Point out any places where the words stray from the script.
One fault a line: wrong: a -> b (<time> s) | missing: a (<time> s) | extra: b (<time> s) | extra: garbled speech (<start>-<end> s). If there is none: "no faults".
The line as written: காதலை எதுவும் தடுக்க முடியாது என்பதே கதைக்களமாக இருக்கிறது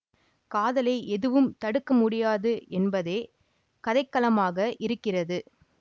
no faults